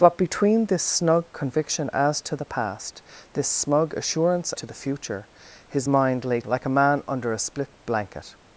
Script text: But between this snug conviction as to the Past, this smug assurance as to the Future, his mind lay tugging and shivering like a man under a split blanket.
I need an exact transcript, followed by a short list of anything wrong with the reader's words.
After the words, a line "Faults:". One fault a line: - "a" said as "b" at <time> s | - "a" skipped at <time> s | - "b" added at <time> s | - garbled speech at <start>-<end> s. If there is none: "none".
But between this snug conviction as to the Past, this smug assurance to the Future, his mind lay like a man under a split blanket.
Faults:
- "as" skipped at 4.5 s
- "tugging and shivering" skipped at 6.4 s